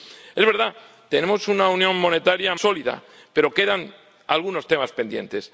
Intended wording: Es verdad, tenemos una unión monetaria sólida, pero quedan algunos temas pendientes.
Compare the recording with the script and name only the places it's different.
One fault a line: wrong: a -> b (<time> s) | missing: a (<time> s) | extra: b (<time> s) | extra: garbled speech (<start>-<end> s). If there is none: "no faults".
no faults